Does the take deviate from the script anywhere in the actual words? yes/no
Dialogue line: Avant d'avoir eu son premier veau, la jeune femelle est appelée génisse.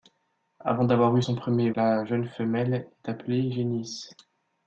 yes